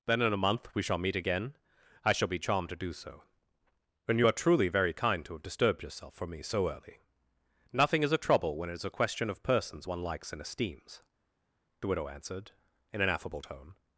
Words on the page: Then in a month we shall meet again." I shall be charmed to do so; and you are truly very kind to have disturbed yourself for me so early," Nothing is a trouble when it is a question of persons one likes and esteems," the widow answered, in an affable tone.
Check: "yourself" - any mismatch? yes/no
no